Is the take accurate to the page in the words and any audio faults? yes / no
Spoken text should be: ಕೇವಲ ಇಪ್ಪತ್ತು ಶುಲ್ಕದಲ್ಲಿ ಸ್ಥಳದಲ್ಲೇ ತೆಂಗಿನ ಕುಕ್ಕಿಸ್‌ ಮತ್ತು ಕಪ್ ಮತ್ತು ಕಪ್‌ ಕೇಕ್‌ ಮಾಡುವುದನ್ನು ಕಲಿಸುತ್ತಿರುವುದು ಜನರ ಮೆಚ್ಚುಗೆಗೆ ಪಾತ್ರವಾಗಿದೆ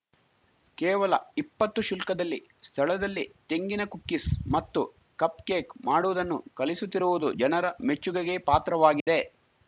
no